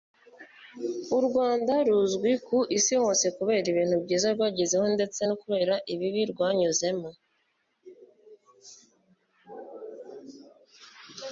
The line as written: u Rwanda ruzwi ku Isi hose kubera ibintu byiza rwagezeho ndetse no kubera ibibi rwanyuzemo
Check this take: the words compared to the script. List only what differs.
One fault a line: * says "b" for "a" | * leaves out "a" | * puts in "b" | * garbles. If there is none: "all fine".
all fine